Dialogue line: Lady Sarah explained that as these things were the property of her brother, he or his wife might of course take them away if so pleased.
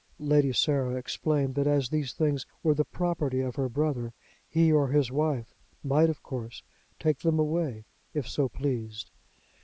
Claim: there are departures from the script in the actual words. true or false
false